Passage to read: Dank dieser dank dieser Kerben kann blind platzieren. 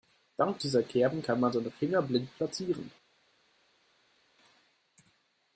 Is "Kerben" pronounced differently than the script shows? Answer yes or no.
yes